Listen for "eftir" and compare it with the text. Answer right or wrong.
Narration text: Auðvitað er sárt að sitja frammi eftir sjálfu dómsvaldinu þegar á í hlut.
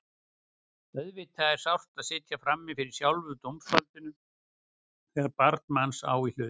wrong